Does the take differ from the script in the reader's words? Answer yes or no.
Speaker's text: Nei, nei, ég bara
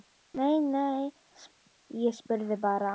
yes